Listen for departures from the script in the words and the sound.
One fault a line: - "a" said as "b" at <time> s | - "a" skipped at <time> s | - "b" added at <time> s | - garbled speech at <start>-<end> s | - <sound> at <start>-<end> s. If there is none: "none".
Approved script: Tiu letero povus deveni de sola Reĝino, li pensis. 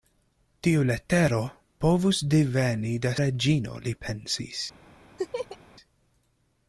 - "sola" skipped at 3.1 s
- laugh at 5.2-5.6 s